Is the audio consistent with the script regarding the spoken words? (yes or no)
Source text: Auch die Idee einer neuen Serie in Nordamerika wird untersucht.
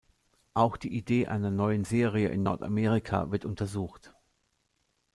yes